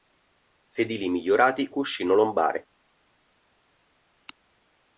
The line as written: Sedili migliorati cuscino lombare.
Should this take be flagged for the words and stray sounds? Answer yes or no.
no